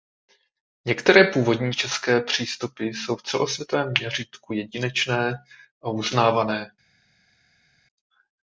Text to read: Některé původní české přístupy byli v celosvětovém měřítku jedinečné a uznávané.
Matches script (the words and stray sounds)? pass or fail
fail